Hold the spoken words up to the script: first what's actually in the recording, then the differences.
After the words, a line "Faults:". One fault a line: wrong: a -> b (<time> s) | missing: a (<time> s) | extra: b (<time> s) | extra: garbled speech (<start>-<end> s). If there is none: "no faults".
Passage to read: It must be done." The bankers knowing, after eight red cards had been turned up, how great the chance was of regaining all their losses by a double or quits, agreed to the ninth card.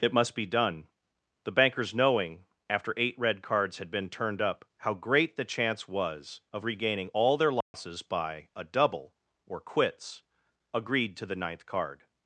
It must be done." The bankers knowing, after eight red cards had been turned up, how great the chance was of regaining all their losses by a double or quits, agreed to the ninth card.
Faults:
no faults